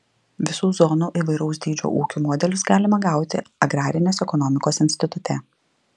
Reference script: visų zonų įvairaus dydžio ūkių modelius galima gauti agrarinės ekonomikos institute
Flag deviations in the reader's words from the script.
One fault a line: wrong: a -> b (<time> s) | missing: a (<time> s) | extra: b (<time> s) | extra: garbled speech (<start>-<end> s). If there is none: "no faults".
no faults